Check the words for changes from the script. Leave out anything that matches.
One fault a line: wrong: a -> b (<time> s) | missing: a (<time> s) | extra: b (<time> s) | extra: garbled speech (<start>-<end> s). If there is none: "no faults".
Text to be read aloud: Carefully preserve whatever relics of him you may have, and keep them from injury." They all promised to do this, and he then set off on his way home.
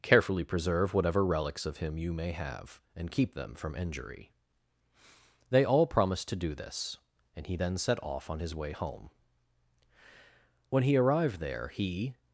extra: When he arrived there he (10.7 s)